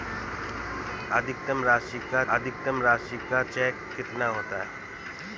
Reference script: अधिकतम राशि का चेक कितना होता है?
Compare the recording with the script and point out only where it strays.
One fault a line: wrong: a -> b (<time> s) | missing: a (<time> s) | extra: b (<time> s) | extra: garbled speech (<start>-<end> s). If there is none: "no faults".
extra: अधिकतम राशि का (2.3 s)